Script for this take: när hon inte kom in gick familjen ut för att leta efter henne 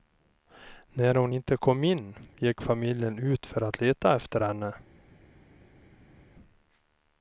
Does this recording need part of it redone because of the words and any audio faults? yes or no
no